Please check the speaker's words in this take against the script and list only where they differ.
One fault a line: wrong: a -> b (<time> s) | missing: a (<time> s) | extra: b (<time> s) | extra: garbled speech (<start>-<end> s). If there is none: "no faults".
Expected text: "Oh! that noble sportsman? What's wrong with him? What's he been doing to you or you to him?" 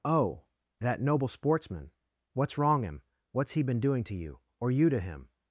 missing: with (2.8 s)